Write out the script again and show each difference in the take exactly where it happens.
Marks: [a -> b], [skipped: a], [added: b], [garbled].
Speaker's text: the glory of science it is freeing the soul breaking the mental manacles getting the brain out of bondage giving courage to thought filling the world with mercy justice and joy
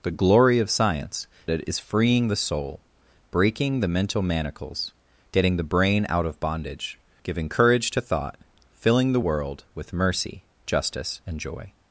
the glory of science it is freeing the soul breaking the mental manacles getting the brain out of bondage giving courage to thought filling the world with mercy justice and joy